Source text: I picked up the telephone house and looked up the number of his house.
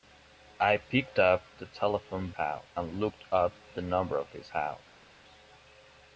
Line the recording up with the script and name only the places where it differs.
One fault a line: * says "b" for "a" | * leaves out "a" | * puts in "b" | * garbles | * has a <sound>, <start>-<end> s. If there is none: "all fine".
all fine